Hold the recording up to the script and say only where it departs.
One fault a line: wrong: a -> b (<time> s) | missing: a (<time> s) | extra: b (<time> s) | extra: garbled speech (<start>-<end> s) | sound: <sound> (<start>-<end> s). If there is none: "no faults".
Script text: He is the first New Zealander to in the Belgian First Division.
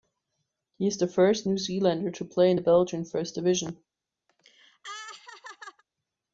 extra: play (2.2 s)
sound: laugh (4.3-5.8 s)